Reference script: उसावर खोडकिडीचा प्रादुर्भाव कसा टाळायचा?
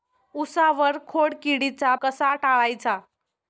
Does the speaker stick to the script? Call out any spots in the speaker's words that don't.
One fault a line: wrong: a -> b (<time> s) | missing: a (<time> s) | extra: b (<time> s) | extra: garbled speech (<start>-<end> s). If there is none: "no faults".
missing: प्रादुर्भाव (1.9 s)